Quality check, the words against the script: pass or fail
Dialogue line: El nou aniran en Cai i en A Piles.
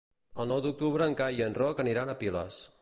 fail